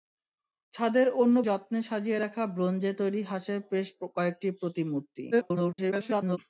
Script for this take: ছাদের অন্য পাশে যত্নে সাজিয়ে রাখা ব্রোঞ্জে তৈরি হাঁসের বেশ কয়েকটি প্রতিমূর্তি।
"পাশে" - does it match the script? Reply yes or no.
no